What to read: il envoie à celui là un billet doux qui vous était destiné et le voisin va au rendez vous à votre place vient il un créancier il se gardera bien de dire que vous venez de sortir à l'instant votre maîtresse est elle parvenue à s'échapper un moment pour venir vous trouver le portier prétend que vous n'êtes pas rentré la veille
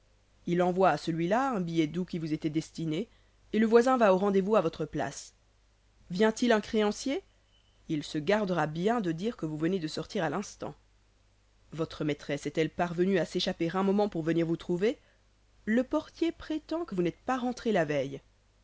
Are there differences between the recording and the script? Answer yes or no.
no